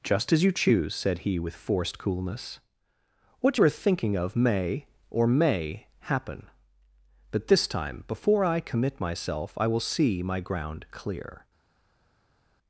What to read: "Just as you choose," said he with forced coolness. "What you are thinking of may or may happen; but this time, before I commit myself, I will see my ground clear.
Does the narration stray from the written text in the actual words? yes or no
no